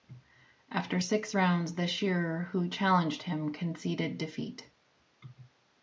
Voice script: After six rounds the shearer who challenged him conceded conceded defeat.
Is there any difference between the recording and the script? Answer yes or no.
yes